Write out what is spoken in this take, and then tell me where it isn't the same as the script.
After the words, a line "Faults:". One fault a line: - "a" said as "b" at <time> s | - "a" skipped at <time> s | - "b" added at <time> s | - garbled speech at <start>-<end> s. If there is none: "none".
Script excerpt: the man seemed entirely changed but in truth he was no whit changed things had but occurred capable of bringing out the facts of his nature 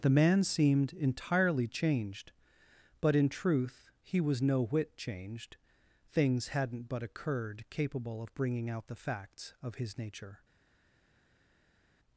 the man seemed entirely changed but in truth he was no whit changed things hadn't but occurred capable of bringing out the facts of his nature
Faults:
- "had" said as "hadn't" at 6.5 s